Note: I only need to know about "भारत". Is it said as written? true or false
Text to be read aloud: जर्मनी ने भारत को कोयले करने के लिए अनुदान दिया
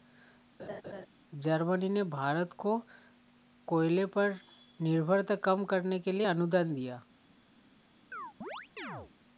true